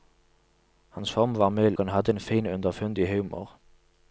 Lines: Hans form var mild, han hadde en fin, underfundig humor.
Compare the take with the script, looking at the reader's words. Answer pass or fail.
pass